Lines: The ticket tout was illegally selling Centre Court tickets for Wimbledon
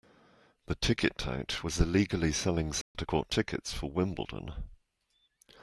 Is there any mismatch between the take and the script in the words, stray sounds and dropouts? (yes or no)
yes